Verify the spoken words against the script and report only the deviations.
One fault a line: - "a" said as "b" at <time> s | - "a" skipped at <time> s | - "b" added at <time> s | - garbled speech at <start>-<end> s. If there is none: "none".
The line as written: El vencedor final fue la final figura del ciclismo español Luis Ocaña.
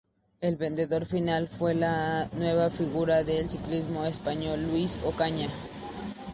- "final" said as "nueva" at 2.3 s